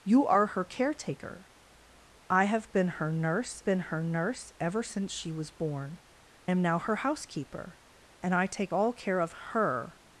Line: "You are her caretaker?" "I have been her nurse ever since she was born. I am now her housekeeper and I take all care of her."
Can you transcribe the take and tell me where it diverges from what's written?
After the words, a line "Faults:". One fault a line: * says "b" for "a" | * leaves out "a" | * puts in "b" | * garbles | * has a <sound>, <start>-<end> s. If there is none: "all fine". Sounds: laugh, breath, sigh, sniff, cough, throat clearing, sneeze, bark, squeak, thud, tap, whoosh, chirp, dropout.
"You are her caretaker?" "I have been her nurse been her nurse ever since she was born. am now her housekeeper and I take all care of her."
Faults:
* puts in "been her nurse"
* leaves out "I"